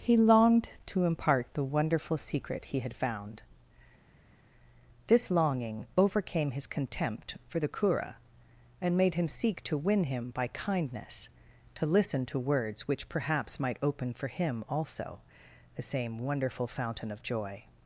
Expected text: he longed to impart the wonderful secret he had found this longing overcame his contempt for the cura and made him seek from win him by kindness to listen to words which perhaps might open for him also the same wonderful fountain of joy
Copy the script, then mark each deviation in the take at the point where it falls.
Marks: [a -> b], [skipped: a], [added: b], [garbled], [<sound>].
he longed to impart the wonderful secret he had found this longing overcame his contempt for the cura and made him seek [from -> to] win him by kindness to listen to words which perhaps might open for him also the same wonderful fountain of joy